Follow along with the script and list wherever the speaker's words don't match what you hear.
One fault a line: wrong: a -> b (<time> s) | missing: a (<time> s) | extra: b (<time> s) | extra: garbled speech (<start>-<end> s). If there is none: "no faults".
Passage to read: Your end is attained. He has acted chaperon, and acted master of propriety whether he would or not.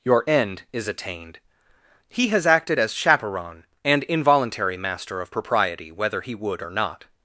extra: as (2.8 s)
wrong: acted -> involuntary (4.0 s)